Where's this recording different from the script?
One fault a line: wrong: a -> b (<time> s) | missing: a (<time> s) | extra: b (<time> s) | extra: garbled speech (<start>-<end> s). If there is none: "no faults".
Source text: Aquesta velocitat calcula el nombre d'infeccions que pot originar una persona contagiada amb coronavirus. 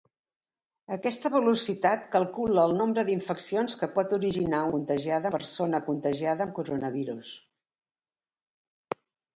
wrong: una -> contagiada (4.7 s)